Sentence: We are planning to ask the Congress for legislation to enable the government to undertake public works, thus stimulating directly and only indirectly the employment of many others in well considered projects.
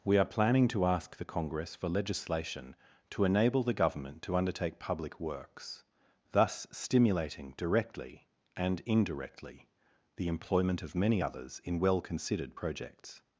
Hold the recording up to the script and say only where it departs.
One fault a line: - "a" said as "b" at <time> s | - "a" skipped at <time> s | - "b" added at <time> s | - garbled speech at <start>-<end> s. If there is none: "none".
- "only" skipped at 8.8 s